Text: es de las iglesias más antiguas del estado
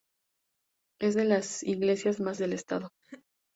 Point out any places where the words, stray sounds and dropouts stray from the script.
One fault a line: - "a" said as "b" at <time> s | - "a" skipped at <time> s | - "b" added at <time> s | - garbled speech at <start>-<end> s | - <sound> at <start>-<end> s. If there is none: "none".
- "antiguas" skipped at 2.4 s
- laugh at 3.0-3.3 s